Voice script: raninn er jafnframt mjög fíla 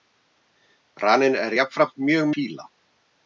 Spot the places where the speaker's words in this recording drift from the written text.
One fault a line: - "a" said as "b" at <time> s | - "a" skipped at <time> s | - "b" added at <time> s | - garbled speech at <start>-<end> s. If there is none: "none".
none